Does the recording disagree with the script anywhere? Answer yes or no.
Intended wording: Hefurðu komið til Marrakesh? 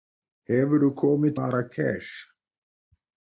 yes